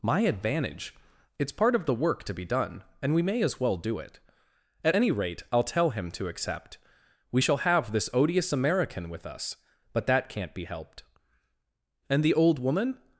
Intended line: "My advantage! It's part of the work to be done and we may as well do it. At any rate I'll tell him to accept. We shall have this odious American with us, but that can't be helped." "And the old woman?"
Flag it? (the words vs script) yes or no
no